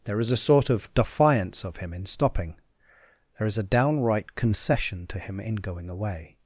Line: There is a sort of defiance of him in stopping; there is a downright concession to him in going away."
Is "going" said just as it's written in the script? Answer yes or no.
yes